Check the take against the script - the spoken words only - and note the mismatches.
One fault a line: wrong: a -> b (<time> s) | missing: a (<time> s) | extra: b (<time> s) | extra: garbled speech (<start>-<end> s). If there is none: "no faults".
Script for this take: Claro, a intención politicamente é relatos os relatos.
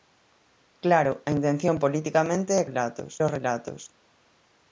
no faults